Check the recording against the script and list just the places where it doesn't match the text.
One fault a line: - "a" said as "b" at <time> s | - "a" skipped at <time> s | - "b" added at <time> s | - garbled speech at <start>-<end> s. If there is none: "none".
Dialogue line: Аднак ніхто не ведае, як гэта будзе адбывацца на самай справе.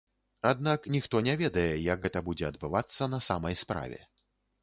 none